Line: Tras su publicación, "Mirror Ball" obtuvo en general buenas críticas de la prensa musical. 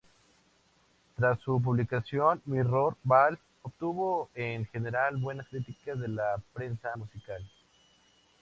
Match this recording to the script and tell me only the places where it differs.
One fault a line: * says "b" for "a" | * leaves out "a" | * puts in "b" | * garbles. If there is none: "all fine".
all fine